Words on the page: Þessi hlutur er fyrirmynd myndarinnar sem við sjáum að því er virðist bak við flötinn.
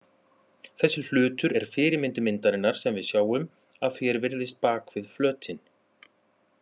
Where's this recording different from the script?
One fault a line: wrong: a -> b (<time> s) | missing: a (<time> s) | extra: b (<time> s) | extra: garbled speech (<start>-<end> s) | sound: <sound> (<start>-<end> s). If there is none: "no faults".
no faults